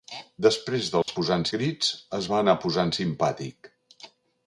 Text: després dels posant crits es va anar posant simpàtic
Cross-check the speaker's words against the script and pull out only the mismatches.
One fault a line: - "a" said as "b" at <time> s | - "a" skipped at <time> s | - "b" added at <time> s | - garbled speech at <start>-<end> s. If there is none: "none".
none